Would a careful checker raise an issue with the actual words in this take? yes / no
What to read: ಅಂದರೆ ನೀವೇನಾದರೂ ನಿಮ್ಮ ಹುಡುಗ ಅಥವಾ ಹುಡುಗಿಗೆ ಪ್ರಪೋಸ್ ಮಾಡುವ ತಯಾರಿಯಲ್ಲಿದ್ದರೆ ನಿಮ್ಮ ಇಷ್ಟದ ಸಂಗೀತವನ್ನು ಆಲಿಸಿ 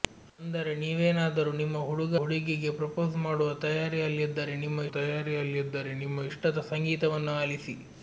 yes